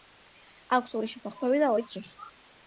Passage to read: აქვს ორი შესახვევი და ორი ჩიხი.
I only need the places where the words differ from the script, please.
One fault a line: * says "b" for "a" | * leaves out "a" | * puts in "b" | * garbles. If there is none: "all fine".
all fine